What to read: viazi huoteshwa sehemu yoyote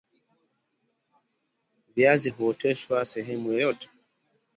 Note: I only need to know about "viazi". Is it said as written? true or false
true